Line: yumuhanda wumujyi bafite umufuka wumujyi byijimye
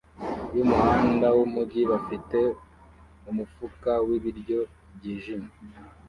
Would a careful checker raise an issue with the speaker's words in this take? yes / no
yes